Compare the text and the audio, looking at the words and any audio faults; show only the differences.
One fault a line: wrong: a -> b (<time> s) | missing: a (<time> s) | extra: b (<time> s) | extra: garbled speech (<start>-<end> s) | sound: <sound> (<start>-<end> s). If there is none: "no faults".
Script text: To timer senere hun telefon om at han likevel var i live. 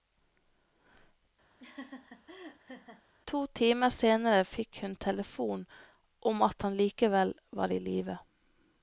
sound: laugh (1.6-3.0 s)
extra: fikk (4.5 s)